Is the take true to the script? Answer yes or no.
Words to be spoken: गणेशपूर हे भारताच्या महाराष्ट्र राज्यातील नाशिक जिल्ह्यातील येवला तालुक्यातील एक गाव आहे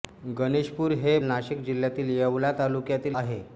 no